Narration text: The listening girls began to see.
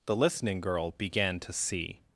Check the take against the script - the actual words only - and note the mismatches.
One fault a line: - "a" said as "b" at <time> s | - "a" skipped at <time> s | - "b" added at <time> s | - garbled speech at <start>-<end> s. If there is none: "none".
- "girls" said as "girl" at 0.6 s